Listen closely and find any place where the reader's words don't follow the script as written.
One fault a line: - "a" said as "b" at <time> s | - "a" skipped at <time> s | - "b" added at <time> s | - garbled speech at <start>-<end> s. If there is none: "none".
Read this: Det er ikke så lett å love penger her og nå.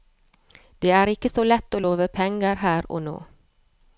none